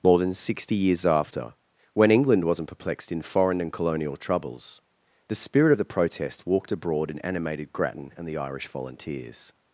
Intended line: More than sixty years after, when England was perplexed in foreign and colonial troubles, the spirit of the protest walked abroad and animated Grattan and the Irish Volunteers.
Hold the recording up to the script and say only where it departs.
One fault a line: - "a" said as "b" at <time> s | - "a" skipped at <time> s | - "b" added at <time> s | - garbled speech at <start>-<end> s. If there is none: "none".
- "was" said as "wasn't" at 2.4 s